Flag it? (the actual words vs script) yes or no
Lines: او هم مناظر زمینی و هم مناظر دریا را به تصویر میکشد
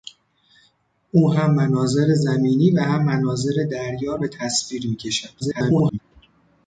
yes